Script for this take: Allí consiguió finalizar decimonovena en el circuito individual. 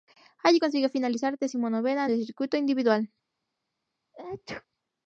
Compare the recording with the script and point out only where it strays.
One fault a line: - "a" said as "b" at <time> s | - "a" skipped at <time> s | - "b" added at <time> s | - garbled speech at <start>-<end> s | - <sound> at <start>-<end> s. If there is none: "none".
- sneeze at 4.1-4.7 s